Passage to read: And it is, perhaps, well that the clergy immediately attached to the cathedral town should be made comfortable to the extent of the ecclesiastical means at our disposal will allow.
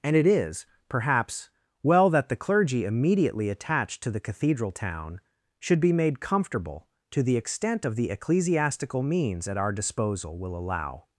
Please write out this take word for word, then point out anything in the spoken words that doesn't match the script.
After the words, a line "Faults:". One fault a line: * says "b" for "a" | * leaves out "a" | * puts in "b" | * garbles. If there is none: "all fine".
And it is, perhaps, well that the clergy immediately attached to the cathedral town should be made comfortable to the extent of the ecclesiastical means at our disposal will allow.
Faults:
all fine